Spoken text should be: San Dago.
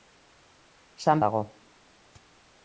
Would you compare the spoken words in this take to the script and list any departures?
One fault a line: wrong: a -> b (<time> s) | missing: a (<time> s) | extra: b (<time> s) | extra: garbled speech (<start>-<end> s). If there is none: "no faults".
no faults